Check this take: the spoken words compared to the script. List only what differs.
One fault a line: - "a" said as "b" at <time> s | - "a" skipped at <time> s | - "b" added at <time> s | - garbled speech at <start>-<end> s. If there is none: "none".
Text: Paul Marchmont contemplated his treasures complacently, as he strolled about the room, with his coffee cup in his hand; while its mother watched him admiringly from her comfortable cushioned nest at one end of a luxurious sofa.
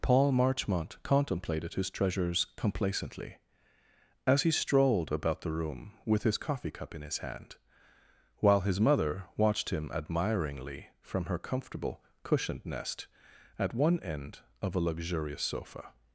- "its" said as "his" at 8.6 s